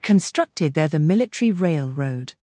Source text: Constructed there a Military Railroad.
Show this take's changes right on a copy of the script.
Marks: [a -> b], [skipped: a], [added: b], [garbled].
Constructed there [a -> the] Military Railroad.